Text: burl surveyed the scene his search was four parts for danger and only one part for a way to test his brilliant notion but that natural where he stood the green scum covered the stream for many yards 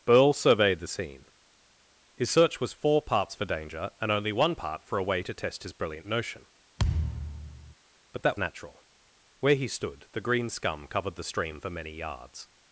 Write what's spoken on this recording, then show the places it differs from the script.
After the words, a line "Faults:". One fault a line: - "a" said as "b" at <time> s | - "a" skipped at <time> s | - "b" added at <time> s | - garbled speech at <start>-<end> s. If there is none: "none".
burl surveyed the scene his search was four parts for danger and only one part for a way to test his brilliant notion but that natural where he stood the green scum covered the stream for many yards
Faults:
none